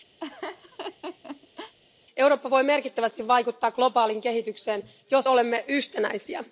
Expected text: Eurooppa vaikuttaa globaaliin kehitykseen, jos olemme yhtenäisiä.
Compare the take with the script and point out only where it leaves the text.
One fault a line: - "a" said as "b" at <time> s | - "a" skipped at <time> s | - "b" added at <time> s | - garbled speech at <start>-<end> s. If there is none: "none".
- "voi merkittävästi" added at 2.5 s